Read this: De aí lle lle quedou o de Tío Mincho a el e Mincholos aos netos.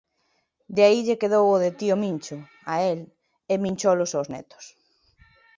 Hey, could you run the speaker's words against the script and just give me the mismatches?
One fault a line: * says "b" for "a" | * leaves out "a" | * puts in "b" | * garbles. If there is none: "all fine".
* leaves out "lle"